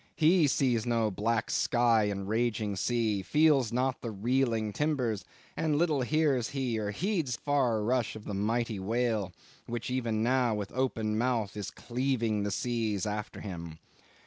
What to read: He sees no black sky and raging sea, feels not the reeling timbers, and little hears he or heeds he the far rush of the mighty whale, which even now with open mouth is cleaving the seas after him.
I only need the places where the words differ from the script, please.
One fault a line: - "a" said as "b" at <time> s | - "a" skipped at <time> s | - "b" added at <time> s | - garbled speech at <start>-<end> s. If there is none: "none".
- "he the" skipped at 7.3 s